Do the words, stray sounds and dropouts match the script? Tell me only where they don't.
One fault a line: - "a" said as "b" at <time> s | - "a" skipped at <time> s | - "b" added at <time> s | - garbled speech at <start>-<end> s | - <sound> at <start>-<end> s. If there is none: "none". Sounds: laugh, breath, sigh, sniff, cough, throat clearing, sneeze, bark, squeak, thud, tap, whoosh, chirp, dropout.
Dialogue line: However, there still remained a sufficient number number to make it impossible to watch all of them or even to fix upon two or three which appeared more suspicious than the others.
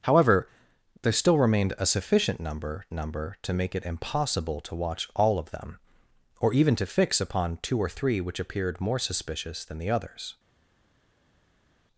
none